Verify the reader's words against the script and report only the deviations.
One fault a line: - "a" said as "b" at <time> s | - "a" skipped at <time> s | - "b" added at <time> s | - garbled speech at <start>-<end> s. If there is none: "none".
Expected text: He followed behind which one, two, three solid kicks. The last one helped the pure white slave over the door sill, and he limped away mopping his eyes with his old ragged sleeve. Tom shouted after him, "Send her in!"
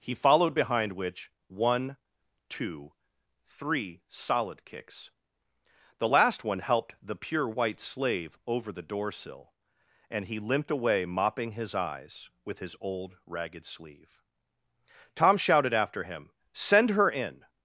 none